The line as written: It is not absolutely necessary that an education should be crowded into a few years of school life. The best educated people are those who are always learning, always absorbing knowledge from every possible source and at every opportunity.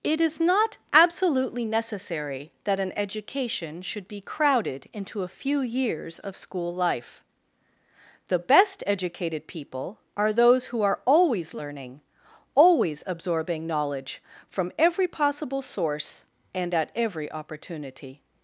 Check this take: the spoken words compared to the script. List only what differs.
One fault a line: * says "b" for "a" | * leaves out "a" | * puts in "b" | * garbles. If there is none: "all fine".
all fine